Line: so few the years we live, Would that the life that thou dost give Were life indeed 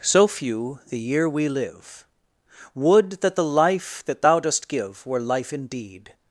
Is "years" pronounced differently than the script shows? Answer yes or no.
yes